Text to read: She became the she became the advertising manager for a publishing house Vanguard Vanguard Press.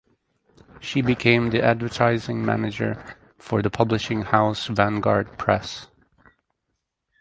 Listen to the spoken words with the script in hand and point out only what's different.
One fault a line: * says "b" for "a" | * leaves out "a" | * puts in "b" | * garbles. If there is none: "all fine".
* leaves out "she became the"
* says "the" for "a"
* leaves out "Vanguard"